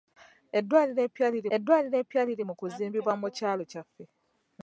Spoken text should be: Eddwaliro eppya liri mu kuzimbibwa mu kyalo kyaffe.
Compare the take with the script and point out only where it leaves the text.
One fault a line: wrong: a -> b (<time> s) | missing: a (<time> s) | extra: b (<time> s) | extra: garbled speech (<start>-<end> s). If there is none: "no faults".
extra: eddwaliro eppya liri (1.5 s)